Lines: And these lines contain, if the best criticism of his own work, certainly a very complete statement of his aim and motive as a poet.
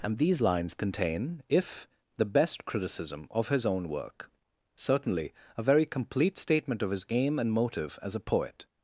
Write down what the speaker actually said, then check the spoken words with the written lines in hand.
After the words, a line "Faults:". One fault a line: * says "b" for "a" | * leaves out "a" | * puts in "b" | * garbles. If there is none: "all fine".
And these lines contain, if the best criticism of his own work, certainly a very complete statement of his aim and motive as a poet.
Faults:
all fine